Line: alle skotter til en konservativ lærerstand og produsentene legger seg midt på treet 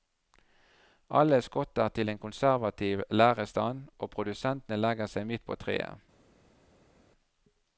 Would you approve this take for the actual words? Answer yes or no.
yes